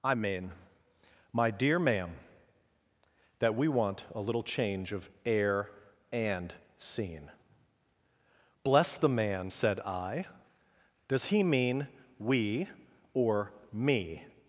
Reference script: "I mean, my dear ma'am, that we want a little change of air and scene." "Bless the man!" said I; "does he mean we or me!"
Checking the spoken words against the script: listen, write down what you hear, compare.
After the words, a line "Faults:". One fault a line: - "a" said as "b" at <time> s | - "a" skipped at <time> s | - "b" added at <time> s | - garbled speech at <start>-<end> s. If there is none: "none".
"I mean, my dear ma'am, that we want a little change of air and scene." "Bless the man!" said I; "does he mean we or me!"
Faults:
none